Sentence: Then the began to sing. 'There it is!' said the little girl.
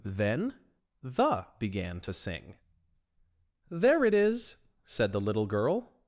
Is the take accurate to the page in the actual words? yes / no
yes